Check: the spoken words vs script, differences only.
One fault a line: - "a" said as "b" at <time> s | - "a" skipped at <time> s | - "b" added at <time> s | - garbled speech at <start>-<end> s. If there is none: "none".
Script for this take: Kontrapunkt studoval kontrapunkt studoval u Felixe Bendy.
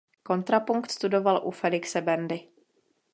- "kontrapunkt studoval" skipped at 1.4 s